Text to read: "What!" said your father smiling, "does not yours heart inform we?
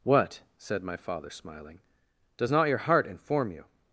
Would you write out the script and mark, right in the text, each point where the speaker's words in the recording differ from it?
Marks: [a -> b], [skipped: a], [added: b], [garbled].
"What!" said [your -> my] father smiling, "does not [yours -> your] heart inform [we? -> you]